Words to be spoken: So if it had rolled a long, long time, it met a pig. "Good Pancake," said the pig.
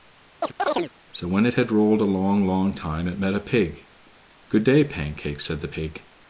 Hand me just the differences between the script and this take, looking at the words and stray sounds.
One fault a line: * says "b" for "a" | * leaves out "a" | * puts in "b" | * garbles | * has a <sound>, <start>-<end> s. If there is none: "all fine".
* has a chirp, 0.4-0.9 s
* says "when" for "if"
* puts in "day"